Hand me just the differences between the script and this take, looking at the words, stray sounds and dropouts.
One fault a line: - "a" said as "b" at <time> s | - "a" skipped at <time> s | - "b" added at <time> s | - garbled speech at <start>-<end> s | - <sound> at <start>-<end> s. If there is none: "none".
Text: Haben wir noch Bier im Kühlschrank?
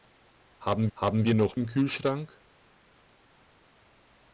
- "haben" added at 0.9 s
- "Bier" skipped at 1.5 s